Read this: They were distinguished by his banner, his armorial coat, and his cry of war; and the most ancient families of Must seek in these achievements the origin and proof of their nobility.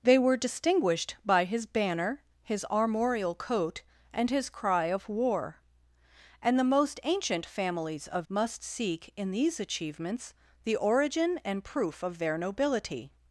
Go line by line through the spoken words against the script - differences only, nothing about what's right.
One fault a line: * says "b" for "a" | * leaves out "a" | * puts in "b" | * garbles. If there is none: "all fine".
all fine